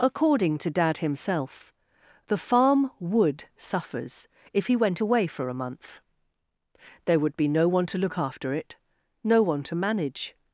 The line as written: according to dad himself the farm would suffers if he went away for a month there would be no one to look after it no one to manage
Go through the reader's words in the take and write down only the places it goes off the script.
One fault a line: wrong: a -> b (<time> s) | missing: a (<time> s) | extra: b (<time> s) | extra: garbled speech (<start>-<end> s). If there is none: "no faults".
no faults